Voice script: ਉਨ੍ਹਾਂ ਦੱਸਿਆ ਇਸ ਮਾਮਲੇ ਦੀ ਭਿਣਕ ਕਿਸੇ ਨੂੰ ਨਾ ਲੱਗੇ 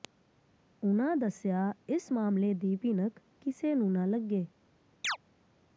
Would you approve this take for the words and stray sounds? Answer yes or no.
no